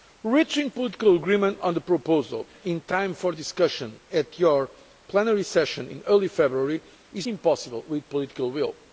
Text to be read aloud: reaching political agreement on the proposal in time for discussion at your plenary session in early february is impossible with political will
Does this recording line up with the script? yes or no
yes